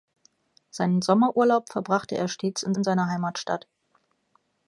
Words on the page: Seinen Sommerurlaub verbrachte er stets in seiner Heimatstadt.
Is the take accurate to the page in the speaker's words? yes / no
no